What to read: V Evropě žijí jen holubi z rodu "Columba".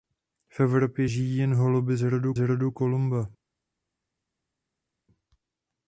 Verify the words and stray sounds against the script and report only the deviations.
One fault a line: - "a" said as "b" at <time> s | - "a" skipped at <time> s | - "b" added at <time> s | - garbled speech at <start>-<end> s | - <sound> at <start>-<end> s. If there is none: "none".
- "rodu" added at 2.4 s